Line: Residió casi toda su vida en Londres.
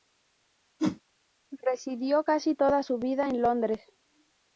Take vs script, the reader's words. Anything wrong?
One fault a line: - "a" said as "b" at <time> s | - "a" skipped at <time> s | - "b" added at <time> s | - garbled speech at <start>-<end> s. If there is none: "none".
none